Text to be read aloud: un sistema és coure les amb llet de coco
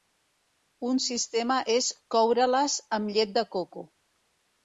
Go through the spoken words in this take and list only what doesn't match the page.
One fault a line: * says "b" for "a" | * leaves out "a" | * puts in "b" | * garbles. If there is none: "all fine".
all fine